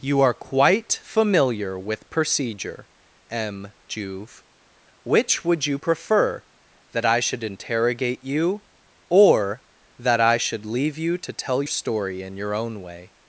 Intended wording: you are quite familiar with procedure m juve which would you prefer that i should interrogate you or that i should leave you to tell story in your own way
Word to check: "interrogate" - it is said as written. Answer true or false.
true